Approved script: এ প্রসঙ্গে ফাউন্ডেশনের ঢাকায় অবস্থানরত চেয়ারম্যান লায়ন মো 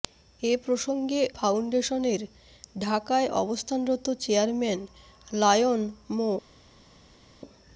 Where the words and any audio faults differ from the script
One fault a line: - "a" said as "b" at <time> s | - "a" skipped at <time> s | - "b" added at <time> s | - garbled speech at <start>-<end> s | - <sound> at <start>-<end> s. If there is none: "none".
none